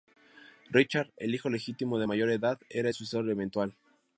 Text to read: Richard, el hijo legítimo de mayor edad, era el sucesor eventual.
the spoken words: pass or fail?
pass